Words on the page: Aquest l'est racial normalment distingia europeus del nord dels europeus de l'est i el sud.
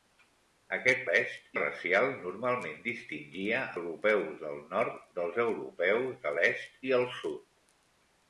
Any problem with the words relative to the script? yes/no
no